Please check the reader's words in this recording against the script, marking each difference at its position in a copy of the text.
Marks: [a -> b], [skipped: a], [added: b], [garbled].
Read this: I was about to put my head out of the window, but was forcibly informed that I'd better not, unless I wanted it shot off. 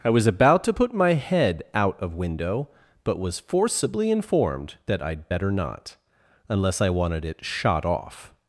I was about to put my head out of [skipped: the] window, but was forcibly informed that I'd better not, unless I wanted it shot off.